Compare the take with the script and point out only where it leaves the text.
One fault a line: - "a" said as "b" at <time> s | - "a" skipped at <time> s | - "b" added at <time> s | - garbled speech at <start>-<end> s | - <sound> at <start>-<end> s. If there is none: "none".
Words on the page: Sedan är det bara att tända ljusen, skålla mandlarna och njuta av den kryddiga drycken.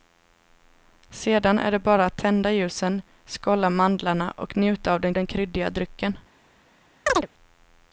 - "den" added at 5.1 s
- chirp at 7.1-7.3 s